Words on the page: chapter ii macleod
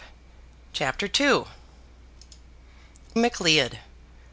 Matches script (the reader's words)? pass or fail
pass